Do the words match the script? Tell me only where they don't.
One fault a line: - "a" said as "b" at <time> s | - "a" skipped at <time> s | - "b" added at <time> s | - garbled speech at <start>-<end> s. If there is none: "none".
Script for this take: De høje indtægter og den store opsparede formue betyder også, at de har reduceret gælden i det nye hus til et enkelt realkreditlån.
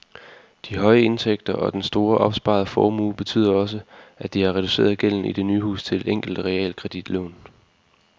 none